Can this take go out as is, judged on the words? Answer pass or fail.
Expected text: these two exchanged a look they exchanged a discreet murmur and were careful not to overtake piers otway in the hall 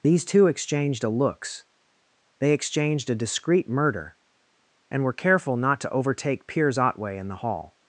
fail